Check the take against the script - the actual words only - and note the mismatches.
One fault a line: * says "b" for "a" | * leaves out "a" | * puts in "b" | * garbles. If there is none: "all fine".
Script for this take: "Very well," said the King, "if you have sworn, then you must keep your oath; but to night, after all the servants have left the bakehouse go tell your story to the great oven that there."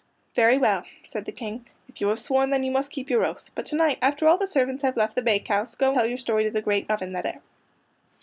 all fine